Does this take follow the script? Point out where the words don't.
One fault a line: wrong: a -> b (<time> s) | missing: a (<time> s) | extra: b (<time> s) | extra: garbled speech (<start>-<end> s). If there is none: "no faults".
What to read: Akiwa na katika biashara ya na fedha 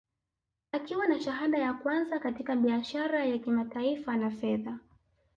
extra: shahada ya kwanza (1.2 s)
extra: kimataifa (3.4 s)